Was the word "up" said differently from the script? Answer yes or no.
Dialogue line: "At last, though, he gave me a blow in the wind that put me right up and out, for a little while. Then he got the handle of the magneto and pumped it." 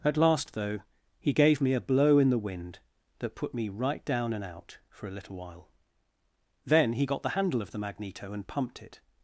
yes